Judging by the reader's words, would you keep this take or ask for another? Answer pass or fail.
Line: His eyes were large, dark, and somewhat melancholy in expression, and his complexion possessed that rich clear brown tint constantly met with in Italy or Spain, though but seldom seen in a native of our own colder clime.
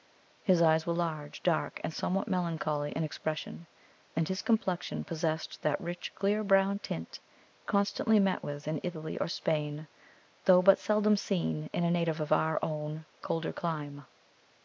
pass